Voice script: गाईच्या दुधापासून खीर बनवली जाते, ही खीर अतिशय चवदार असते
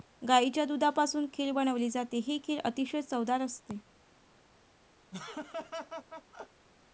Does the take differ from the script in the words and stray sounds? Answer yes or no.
yes